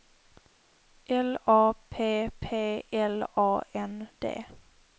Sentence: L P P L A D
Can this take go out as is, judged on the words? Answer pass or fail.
fail